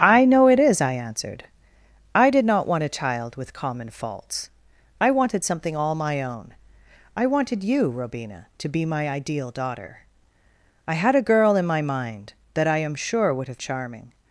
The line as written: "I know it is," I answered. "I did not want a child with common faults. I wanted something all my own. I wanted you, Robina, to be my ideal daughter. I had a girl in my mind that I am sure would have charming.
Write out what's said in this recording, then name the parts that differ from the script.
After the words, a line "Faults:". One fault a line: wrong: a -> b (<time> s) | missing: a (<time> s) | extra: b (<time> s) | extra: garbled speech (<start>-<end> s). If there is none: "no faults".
"I know it is," I answered. "I did not want a child with common faults. I wanted something all my own. I wanted you, Robina, to be my ideal daughter. I had a girl in my mind that I am sure would have charming.
Faults:
no faults